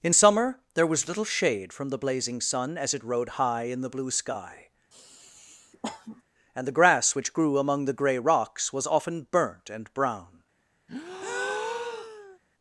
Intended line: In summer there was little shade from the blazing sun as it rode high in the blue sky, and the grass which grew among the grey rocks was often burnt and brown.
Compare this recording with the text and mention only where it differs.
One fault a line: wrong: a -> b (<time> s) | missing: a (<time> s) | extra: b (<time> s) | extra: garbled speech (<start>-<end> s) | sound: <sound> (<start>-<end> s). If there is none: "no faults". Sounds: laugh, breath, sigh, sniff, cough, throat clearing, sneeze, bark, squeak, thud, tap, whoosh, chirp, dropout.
sound: sniff (4.9-6.2 s)
sound: breath (10.9-12.4 s)